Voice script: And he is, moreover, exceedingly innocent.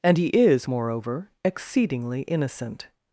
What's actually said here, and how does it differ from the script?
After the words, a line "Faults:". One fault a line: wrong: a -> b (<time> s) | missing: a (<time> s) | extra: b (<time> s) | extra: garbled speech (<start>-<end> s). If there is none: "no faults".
And he is, moreover, exceedingly innocent.
Faults:
no faults